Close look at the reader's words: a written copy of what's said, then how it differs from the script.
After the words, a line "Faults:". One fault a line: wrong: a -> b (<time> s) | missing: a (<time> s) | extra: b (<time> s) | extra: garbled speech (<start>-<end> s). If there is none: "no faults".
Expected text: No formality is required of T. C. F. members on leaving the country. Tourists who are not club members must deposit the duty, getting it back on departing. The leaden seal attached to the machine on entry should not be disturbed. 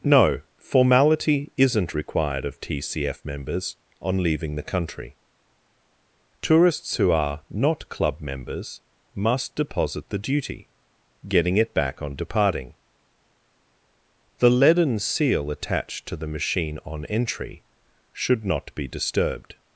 No formality isn't required of T. C. F. members on leaving the country. Tourists who are not club members must deposit the duty, getting it back on departing. The leaden seal attached to the machine on entry should not be disturbed.
Faults:
wrong: is -> isn't (1.6 s)